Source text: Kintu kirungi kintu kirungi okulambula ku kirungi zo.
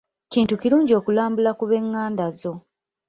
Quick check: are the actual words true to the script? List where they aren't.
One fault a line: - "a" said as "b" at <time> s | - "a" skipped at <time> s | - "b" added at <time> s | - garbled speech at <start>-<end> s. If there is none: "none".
- "kintu kirungi" skipped at 0.9 s
- "kirungi" said as "b'enganda" at 1.7 s